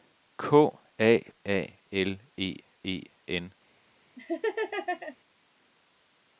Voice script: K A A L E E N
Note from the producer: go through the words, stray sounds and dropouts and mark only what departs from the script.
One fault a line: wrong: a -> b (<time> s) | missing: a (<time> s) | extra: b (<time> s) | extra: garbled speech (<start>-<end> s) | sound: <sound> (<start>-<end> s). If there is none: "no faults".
sound: laugh (4.2-5.2 s)